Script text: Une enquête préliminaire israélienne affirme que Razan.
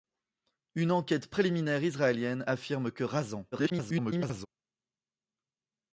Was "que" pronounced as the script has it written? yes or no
yes